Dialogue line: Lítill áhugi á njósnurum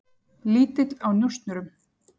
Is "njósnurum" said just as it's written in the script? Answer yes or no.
yes